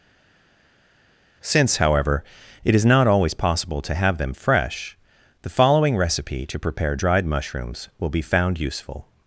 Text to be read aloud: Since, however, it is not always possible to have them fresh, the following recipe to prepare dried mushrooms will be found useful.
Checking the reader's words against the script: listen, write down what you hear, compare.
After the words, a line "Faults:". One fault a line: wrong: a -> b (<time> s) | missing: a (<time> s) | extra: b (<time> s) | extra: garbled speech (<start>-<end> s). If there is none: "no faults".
Since, however, it is not always possible to have them fresh, the following recipe to prepare dried mushrooms will be found useful.
Faults:
no faults